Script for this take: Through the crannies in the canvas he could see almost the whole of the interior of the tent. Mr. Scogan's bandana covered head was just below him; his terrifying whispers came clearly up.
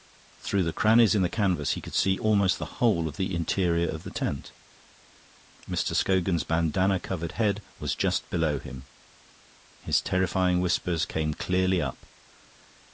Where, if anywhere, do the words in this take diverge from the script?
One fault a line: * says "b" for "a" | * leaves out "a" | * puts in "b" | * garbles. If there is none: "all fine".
all fine